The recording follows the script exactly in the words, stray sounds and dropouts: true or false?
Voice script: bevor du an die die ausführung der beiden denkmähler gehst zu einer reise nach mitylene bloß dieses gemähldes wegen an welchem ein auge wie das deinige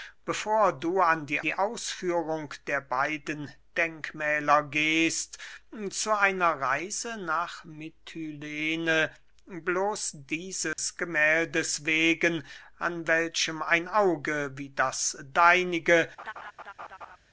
false